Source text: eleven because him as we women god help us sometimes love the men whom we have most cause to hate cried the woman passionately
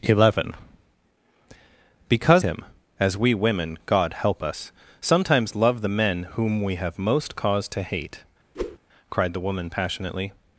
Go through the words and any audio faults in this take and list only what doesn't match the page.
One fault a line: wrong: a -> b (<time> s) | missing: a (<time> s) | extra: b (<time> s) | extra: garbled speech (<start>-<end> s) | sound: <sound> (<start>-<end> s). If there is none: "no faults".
sound: whoosh (8.5-8.8 s)